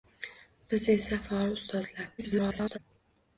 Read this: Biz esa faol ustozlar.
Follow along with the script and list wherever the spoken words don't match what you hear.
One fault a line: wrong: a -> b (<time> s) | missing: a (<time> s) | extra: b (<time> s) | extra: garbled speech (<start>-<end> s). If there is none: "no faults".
extra: garbled speech (2.2-2.8 s)